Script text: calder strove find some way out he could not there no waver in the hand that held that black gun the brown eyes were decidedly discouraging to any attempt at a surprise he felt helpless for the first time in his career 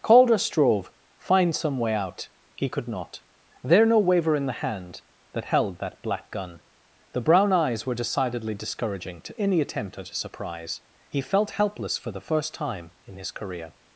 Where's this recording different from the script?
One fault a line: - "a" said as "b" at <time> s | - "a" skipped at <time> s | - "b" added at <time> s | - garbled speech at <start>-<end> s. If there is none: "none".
none